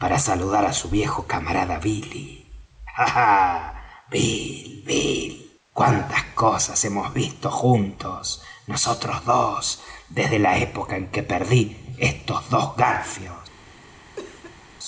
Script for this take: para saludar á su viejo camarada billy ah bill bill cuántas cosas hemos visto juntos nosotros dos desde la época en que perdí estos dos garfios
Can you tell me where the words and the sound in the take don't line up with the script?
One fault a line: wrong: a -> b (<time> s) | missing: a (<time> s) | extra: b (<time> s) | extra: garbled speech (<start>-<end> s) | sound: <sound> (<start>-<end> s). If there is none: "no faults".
sound: cough (14.2-14.6 s)